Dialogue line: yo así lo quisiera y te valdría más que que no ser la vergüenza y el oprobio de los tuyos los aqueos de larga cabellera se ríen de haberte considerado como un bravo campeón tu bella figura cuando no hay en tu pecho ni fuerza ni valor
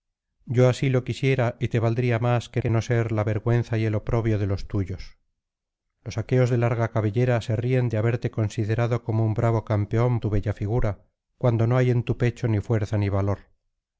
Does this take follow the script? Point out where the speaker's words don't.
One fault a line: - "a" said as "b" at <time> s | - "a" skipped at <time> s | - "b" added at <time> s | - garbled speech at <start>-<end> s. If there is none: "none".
none